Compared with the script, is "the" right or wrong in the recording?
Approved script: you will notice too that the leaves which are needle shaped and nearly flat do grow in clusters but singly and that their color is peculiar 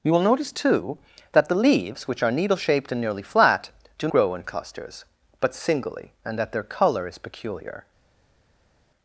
right